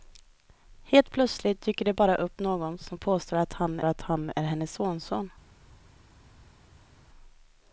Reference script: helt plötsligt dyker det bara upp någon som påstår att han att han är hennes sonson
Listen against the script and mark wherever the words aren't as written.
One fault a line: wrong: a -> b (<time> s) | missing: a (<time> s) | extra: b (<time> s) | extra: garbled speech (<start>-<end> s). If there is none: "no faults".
no faults